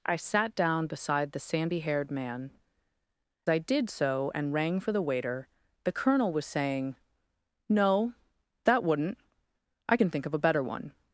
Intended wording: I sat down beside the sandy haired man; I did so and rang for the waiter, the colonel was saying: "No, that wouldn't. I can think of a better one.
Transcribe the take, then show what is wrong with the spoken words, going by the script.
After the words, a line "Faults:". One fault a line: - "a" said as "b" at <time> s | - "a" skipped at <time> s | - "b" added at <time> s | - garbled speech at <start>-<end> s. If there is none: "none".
I sat down beside the sandy haired man; I did so and rang for the waiter, the colonel was saying: "No, that wouldn't. I can think of a better one.
Faults:
none